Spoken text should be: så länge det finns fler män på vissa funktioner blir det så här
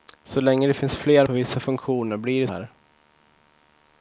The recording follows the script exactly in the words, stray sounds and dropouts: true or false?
false